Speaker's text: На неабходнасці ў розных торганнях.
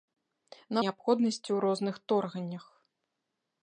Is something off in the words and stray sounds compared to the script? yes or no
no